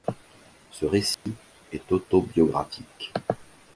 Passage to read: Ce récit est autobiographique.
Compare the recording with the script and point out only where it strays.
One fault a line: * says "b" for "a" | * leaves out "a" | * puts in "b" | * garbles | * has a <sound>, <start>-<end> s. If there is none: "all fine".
* has a dropout, 1.1-1.3 s